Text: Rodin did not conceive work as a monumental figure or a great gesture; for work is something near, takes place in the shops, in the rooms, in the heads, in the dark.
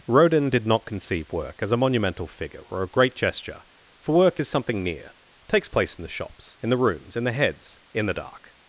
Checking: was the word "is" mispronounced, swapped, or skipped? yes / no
no